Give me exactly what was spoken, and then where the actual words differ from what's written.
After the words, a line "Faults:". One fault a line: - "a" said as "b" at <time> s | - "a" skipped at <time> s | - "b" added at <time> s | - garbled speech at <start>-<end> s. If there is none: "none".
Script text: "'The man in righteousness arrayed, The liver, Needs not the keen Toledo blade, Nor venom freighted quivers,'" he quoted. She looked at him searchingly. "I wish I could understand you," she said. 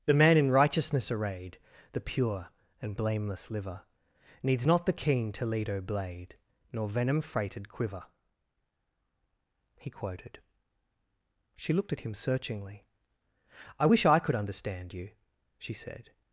"'The man in righteousness arrayed, The pure and blameless liver, Needs not the keen Toledo blade, Nor venom freighted quiver,'" he quoted. She looked at him searchingly. "I wish I could understand you," she said.
Faults:
- "pure and blameless" added at 2.0 s
- "quivers" said as "quiver" at 7.7 s